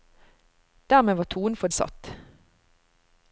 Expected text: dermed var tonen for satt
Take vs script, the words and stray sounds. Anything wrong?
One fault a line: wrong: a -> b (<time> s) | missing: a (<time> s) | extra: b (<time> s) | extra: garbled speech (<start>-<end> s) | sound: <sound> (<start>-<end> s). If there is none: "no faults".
no faults